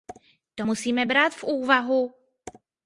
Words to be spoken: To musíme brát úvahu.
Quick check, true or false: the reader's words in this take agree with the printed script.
false